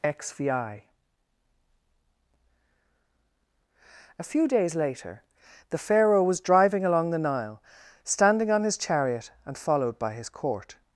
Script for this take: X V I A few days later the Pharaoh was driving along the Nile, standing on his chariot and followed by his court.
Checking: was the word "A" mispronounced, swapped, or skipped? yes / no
no